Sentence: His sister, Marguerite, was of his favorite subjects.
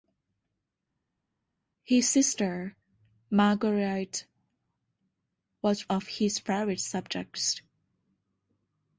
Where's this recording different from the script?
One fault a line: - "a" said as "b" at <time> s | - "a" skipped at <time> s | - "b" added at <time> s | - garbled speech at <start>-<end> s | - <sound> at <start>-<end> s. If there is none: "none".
none